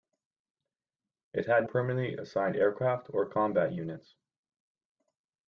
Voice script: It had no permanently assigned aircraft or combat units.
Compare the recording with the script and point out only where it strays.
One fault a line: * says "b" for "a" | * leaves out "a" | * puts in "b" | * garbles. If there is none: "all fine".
* leaves out "no"